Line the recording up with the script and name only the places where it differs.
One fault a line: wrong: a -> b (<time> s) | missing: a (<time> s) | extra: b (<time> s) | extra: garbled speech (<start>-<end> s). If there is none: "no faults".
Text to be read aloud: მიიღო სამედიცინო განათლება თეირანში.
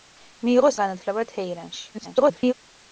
missing: სამედიცინო (0.7 s)
extra: garbled speech (1.9-2.5 s)